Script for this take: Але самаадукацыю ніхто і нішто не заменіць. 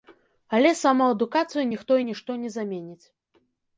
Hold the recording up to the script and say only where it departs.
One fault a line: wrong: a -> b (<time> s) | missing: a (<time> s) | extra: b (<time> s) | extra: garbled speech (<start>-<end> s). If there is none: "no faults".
no faults